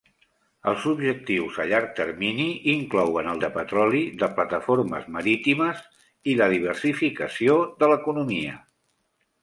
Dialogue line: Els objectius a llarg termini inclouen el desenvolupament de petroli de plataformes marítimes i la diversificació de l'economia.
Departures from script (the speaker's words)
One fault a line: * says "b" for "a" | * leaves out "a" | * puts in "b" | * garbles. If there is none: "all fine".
* leaves out "desenvolupament"